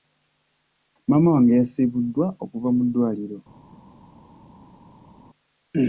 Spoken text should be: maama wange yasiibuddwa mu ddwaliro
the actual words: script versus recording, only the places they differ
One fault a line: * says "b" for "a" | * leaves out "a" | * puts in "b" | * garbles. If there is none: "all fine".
* puts in "okuva"